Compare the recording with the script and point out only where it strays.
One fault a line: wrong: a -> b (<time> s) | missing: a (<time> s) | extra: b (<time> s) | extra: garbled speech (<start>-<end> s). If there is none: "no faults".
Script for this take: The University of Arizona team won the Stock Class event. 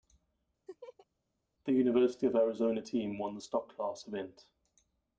no faults